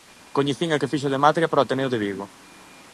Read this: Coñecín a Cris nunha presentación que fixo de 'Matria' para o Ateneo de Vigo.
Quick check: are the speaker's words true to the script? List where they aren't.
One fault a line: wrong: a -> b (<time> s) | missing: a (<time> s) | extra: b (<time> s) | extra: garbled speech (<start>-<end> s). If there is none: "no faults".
missing: Cris nunha presentación (0.8 s)